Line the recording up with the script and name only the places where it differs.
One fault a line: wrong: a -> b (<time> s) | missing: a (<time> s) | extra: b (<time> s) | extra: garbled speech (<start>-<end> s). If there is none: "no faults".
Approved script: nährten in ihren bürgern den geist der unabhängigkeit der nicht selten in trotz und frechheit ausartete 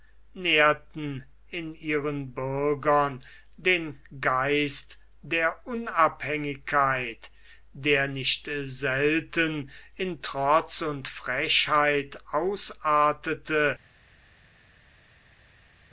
no faults